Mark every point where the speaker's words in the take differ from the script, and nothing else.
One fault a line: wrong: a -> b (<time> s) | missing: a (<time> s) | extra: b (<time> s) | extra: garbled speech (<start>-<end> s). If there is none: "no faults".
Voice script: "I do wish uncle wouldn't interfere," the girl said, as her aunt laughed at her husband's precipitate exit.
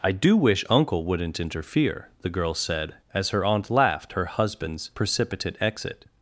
missing: at (4.1 s)